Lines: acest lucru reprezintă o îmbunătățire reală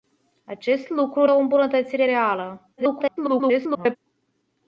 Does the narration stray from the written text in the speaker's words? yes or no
yes